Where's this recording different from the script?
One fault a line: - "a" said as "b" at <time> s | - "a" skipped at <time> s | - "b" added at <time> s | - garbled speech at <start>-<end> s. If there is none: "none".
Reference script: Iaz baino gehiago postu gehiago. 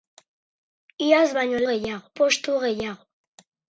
none